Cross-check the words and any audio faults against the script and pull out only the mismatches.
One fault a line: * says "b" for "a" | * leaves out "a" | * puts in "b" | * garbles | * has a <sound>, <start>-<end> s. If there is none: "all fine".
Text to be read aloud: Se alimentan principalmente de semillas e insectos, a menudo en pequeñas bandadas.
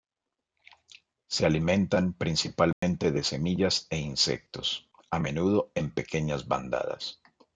* has a dropout, 2.7-2.8 s